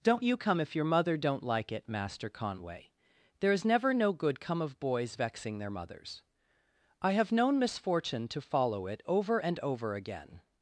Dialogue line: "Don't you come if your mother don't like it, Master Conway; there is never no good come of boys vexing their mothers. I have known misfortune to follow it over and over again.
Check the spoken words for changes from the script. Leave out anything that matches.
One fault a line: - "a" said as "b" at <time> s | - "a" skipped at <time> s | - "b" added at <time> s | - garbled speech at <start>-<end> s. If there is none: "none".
none